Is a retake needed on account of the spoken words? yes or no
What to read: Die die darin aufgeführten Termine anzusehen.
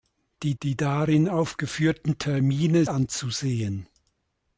no